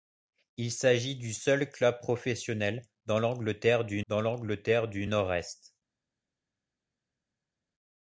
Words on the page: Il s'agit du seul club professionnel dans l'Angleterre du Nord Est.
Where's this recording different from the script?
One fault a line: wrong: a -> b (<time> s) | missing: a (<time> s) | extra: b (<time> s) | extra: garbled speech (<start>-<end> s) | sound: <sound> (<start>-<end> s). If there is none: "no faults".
extra: dans l'Angleterre du (4.1 s)